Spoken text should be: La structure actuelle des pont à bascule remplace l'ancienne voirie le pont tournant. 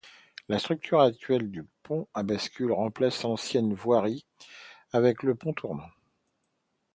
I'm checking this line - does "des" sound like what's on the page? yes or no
no